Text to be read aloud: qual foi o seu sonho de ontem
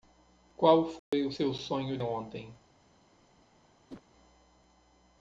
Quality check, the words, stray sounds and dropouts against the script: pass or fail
fail